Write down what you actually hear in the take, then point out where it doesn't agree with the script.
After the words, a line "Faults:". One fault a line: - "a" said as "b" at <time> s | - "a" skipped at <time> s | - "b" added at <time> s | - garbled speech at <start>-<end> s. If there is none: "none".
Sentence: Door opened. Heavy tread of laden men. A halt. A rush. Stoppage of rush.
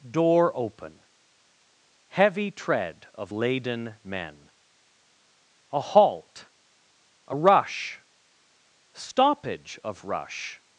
Door open. Heavy tread of laden men. A halt. A rush. Stoppage of rush.
Faults:
- "opened" said as "open" at 0.6 s